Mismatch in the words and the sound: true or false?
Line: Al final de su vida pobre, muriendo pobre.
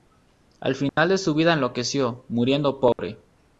true